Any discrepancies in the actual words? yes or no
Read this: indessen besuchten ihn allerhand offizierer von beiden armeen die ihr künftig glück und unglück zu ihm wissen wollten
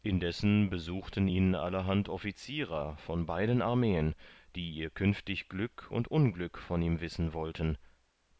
yes